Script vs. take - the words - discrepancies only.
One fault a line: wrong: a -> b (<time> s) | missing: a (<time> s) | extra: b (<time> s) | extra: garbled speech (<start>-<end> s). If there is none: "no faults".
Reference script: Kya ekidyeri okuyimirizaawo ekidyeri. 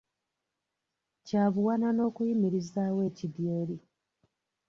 wrong: ekidyeri -> buwanana (1.5 s)